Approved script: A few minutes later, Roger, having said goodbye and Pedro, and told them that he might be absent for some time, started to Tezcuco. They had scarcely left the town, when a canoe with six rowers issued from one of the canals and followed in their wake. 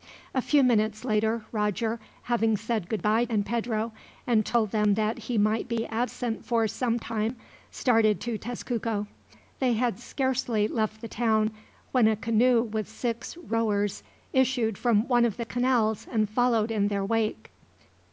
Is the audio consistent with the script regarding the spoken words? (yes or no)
yes